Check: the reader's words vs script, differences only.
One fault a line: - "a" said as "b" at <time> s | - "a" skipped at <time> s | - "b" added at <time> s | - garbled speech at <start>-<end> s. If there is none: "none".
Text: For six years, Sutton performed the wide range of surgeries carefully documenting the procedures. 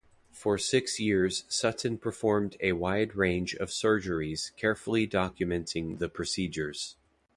- "the" said as "a" at 2.6 s